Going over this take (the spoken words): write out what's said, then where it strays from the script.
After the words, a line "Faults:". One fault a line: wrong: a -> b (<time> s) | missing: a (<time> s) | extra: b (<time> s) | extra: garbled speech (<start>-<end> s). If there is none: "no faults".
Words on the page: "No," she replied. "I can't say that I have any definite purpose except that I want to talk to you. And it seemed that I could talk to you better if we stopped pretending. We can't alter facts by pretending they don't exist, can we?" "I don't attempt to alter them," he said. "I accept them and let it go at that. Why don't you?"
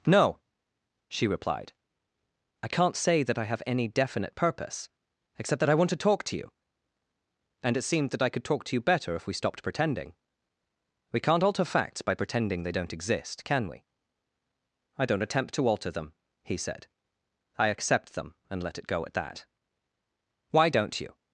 "No," she replied. "I can't say that I have any definite purpose except that I want to talk to you. And it seemed that I could talk to you better if we stopped pretending. We can't alter facts by pretending they don't exist, can we?" "I don't attempt to alter them," he said. "I accept them and let it go at that. Why don't you?"
Faults:
no faults